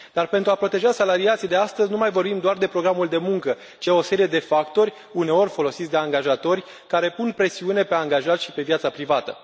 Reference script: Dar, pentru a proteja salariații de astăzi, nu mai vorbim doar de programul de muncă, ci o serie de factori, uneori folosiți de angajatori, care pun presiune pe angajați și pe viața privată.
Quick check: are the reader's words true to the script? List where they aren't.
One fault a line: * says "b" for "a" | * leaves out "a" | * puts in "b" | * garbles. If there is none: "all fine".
all fine